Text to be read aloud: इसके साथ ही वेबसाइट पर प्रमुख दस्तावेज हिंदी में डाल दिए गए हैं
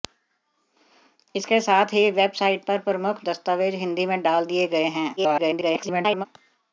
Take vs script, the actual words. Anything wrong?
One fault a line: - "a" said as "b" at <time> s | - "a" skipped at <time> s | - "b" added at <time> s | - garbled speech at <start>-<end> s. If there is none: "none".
- garbled speech at 5.2-6.3 s